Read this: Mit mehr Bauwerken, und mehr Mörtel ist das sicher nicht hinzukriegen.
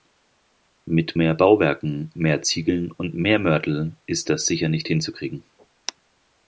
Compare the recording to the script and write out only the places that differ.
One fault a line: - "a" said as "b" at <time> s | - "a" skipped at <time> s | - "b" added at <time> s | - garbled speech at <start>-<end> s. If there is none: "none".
- "mehr Ziegeln" added at 2.1 s